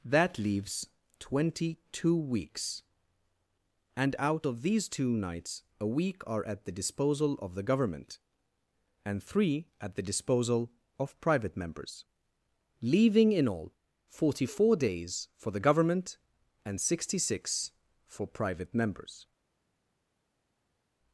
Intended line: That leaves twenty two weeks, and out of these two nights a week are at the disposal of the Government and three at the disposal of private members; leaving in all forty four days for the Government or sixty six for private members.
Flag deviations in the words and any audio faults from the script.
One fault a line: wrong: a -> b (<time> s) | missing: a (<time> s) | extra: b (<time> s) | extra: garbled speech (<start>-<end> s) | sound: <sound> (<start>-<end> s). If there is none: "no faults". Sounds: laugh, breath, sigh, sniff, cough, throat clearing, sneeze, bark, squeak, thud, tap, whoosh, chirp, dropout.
wrong: or -> and (16.6 s)